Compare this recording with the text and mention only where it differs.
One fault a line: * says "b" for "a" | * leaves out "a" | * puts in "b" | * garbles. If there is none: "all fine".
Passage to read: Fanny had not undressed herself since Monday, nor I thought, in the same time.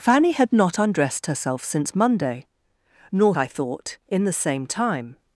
all fine